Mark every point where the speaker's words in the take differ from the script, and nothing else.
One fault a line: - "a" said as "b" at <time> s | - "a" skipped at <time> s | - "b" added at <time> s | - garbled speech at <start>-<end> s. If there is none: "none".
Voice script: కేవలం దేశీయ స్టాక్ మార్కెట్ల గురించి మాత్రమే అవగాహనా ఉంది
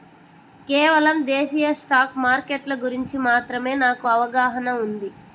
- "నాకు" added at 3.8 s